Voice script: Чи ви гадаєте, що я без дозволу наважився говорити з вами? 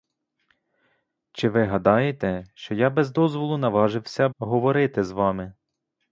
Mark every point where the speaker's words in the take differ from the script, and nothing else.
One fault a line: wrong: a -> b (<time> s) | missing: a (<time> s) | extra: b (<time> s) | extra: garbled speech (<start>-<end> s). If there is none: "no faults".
no faults